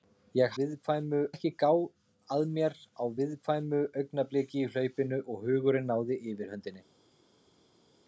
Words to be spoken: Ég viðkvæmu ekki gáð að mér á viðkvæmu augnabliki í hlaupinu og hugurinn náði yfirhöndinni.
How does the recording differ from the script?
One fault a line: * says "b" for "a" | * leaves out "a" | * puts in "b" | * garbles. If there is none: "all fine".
all fine